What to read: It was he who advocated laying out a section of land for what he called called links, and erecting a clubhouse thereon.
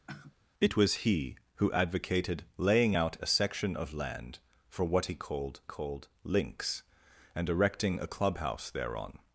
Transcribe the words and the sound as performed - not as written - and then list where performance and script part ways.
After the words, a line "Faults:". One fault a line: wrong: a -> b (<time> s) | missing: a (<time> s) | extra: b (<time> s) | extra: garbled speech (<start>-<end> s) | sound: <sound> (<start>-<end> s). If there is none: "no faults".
It was he who advocated laying out a section of land for what he called called links, and erecting a clubhouse thereon.
Faults:
sound: sigh (0.1-0.4 s)